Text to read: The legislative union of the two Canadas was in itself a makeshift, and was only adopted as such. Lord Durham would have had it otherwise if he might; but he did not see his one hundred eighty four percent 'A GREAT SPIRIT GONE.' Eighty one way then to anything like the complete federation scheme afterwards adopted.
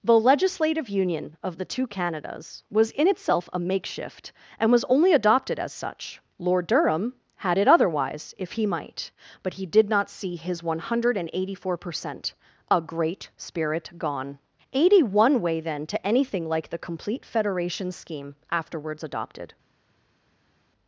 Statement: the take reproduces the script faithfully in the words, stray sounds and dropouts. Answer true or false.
false